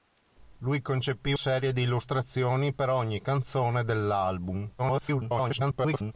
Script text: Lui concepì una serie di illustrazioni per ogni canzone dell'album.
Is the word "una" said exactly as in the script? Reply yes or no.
no